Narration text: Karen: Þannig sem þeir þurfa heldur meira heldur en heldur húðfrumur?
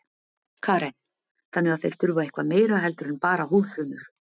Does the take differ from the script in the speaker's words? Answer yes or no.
yes